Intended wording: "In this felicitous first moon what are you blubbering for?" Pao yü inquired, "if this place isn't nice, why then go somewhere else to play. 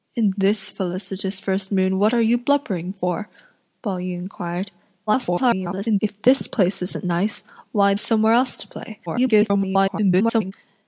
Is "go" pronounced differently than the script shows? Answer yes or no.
yes